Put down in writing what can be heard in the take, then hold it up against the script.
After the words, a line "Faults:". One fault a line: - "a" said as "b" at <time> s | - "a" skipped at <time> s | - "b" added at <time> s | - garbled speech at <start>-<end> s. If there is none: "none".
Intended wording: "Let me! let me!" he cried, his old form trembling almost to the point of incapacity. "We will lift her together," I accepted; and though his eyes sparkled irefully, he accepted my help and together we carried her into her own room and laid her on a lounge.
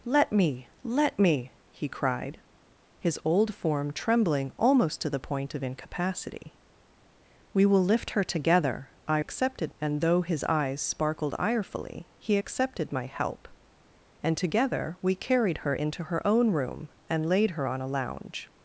"Let me! let me!" he cried, his old form trembling almost to the point of incapacity. "We will lift her together," I accepted; and though his eyes sparkled irefully, he accepted my help and together we carried her into her own room and laid her on a lounge.
Faults:
none